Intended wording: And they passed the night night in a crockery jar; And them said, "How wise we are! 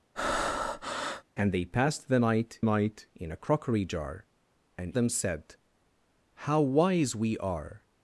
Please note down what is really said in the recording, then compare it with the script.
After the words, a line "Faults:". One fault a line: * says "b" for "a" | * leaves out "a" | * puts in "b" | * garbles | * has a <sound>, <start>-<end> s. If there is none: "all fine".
And they passed the night night in a crockery jar; And them said, "How wise we are!
Faults:
* has a breath, 0.1-1.2 s